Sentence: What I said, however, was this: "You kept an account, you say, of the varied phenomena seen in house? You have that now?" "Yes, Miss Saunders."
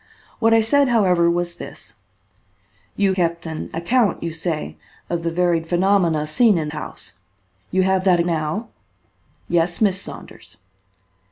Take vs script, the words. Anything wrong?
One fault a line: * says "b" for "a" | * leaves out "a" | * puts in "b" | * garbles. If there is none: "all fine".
all fine